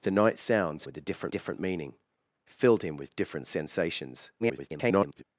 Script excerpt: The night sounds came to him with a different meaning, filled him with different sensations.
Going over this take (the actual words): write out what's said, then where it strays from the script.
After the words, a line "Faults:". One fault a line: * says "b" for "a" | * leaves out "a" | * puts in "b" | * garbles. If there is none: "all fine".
The night sounds with a different different meaning, filled him with different sensations. [garbled]
Faults:
* leaves out "came to him"
* puts in "different"
* garbles